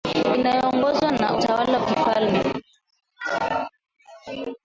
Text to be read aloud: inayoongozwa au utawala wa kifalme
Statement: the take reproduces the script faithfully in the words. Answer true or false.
false